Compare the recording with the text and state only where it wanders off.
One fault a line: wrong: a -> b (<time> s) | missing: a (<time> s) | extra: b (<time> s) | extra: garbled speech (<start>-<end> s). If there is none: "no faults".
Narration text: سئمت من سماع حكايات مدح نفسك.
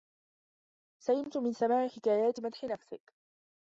no faults